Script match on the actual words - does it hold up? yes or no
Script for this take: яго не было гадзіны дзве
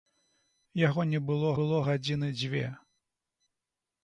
no